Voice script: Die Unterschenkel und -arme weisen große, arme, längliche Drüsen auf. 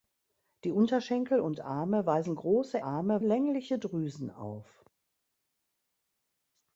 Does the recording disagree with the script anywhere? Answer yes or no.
no